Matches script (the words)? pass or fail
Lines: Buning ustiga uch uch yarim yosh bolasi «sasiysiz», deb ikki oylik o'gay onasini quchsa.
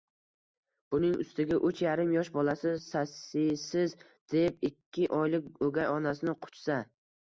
fail